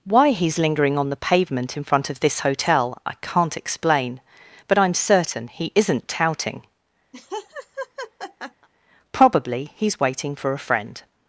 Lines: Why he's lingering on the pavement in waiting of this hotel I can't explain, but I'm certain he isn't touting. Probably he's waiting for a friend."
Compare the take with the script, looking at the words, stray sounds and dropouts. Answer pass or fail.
fail